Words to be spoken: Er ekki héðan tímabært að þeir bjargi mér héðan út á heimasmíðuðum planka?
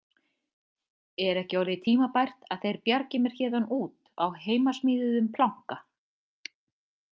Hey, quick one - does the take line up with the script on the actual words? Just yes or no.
no